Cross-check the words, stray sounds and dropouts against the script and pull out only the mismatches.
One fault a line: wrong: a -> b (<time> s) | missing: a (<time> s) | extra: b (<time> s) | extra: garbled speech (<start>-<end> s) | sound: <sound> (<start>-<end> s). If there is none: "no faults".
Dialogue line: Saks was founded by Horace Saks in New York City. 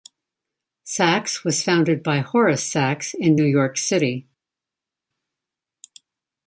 no faults